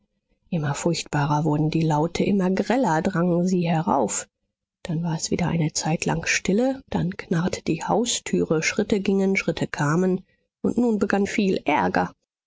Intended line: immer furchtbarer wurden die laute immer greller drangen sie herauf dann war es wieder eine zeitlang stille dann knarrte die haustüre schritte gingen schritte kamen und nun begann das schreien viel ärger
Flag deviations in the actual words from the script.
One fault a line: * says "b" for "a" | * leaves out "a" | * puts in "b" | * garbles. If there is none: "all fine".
* leaves out "das schreien"